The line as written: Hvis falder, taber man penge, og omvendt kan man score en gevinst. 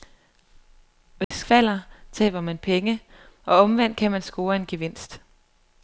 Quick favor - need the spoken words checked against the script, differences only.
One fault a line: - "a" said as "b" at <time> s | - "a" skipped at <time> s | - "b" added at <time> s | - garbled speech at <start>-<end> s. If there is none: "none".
none